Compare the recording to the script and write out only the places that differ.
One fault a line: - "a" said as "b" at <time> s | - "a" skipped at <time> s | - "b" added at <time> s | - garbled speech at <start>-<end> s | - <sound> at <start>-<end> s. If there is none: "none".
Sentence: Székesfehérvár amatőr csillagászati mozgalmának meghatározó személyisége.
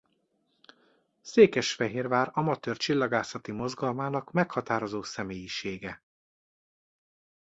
none